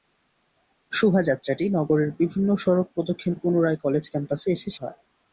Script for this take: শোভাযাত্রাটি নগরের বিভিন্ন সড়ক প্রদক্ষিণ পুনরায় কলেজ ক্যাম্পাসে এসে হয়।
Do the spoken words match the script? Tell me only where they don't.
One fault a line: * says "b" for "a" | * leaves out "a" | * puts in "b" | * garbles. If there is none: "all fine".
all fine